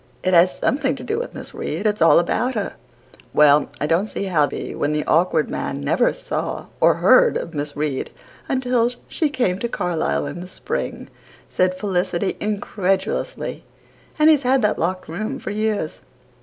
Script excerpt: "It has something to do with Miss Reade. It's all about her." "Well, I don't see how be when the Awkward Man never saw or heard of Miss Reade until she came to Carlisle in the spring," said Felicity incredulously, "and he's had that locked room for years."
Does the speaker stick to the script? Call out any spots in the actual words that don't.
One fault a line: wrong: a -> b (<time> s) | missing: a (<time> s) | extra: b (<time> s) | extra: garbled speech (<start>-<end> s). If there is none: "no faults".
no faults